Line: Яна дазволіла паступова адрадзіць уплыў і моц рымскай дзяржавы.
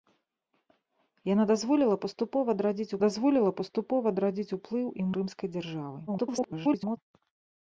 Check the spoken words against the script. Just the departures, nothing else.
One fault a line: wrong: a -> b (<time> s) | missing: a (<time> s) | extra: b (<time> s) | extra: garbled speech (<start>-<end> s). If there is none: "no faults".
extra: дазволіла паступова адрадзіць (3.0 s)
missing: моц (5.1 s)
extra: garbled speech (6.1-7.0 s)